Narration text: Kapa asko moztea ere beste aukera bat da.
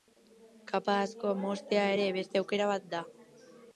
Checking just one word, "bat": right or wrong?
right